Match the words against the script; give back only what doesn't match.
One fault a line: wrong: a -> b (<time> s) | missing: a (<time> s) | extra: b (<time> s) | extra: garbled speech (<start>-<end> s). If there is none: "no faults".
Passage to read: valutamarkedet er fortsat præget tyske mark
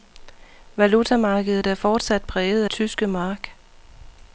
no faults